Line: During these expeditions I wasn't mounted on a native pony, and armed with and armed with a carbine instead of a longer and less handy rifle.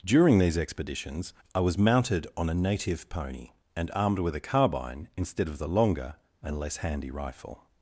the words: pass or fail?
fail